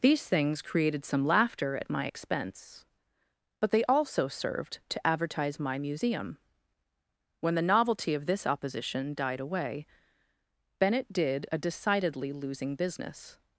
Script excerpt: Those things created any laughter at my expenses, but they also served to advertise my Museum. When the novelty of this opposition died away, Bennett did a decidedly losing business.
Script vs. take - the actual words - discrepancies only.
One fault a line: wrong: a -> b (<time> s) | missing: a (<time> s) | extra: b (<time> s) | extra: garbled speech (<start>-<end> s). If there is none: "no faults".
wrong: Those -> These (0.0 s)
wrong: any -> some (1.1 s)
wrong: expenses -> expense (2.0 s)